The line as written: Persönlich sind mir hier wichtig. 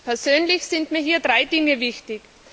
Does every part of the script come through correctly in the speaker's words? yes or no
no